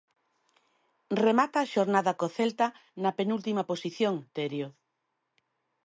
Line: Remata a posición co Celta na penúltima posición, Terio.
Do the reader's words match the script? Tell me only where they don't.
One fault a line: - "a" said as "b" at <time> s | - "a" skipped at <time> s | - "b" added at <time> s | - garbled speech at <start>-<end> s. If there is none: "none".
- "posición" said as "xornada" at 1.7 s